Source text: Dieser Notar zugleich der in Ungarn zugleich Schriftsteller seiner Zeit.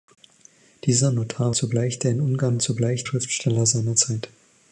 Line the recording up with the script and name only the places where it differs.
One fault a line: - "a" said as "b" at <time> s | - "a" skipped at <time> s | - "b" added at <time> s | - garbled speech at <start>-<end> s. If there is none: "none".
none